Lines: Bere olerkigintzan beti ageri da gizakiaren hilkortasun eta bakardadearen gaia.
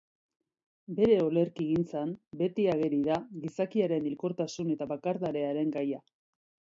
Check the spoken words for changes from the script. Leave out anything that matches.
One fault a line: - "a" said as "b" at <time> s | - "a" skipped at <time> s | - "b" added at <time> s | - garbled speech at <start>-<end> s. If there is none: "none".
none